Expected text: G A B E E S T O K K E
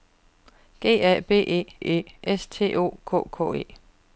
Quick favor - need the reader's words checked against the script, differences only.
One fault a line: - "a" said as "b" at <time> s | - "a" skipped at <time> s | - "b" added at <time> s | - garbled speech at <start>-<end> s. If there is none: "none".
none